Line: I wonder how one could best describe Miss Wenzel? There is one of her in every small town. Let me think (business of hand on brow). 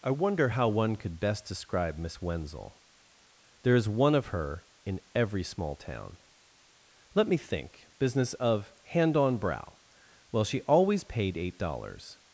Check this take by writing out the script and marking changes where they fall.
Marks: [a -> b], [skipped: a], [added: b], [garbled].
I wonder how one could best describe Miss Wenzel? There is one of her in every small town. Let me think (business of hand on brow). [added: Well she always paid eight dollars]